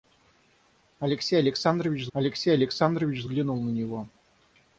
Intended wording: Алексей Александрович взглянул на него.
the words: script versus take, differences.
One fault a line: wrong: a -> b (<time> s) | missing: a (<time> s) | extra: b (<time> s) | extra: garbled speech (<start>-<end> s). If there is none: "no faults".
extra: алексей Александрович (2.1 s)